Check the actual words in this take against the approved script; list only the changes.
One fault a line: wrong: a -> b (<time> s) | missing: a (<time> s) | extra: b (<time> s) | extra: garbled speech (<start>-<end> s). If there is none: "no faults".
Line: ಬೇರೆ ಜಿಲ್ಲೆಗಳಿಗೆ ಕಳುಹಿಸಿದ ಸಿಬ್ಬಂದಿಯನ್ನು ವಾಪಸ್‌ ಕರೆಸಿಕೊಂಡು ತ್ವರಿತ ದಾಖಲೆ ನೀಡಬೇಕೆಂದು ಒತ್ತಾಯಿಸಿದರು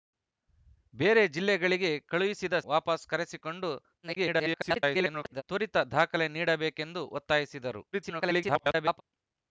missing: ಸಿಬ್ಬಂದಿಯನ್ನು (2.5 s)
extra: garbled speech (4.0-5.4 s)
extra: garbled speech (7.9-9.0 s)